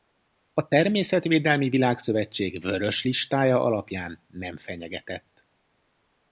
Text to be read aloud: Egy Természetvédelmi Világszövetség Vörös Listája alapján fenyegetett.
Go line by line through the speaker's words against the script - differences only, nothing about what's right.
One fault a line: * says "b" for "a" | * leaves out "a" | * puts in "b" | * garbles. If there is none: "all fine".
* says "A" for "Egy"
* puts in "nem"